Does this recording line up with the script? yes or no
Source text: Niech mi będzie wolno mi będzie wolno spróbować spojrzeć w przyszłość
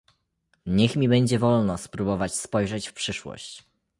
no